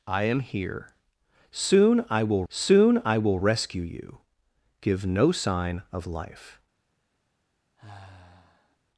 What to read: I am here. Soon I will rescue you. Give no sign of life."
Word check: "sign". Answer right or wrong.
right